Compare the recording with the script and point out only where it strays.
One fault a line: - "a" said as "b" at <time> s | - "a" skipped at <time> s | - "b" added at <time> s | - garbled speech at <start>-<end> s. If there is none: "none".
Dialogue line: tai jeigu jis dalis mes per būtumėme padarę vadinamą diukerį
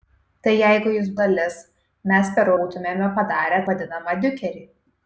none